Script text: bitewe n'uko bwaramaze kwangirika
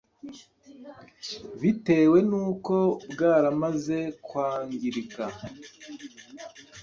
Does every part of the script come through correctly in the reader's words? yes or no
yes